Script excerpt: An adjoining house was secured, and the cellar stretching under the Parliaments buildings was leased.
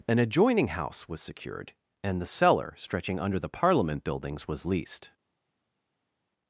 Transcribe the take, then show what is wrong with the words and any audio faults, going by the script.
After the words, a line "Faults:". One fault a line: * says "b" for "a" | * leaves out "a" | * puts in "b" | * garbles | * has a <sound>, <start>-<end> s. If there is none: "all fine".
An adjoining house was secured, and the cellar stretching under the Parliament buildings was leased.
Faults:
* says "Parliament" for "Parliaments"